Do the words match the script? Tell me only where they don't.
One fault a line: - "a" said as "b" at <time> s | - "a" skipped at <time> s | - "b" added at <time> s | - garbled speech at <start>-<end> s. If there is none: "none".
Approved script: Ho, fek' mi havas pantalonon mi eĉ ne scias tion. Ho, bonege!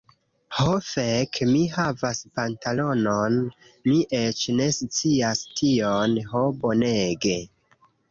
none